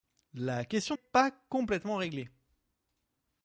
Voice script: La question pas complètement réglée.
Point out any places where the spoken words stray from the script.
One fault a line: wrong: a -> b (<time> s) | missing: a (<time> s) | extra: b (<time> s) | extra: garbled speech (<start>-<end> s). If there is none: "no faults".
no faults